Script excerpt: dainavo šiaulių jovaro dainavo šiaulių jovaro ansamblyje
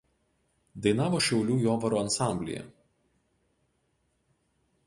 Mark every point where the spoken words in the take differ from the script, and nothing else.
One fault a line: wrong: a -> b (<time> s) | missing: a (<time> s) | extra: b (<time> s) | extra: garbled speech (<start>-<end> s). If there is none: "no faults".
missing: dainavo šiaulių jovaro (2.0 s)